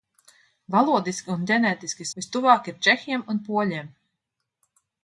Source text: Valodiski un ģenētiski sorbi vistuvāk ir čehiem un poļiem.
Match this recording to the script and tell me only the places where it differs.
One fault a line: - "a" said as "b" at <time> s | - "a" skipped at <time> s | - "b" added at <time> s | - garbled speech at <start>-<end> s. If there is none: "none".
- "sorbi" skipped at 2.1 s